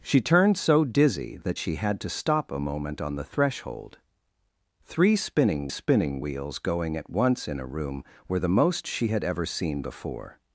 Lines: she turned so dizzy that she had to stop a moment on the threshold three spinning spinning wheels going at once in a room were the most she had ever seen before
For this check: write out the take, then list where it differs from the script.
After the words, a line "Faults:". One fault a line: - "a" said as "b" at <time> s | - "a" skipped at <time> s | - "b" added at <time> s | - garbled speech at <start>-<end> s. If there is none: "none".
she turned so dizzy that she had to stop a moment on the threshold three spinning spinning wheels going at once in a room were the most she had ever seen before
Faults:
none